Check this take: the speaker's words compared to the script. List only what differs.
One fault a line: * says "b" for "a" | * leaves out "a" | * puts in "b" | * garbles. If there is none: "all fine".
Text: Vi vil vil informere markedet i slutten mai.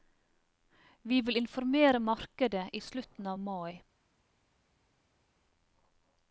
* leaves out "vil"
* puts in "av"